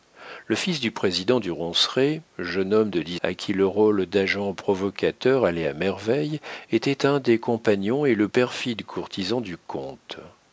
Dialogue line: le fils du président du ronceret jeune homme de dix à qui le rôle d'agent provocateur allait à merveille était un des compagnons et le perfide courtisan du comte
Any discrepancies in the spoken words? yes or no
no